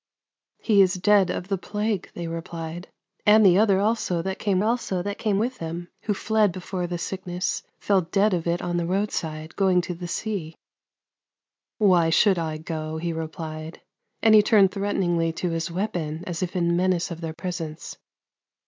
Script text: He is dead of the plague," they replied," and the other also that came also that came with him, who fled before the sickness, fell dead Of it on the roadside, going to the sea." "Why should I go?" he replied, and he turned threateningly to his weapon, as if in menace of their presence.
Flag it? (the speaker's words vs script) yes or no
no